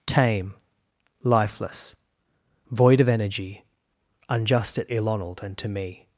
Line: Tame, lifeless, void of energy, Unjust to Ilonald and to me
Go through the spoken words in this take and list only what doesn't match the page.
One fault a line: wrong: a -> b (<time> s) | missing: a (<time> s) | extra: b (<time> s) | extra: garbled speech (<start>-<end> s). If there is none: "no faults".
wrong: to -> at (4.8 s)